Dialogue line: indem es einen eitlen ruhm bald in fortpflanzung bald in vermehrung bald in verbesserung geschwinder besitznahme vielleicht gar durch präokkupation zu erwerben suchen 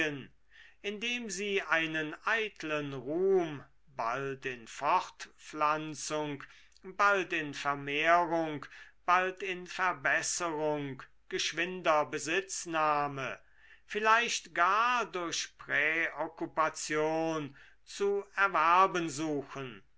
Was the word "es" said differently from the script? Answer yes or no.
yes